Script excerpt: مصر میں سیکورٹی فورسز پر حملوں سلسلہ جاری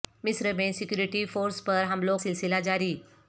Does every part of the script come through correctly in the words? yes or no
yes